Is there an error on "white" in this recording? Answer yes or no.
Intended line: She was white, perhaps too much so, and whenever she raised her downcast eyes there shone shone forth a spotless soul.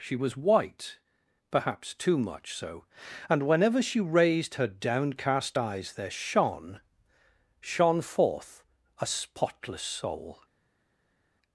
no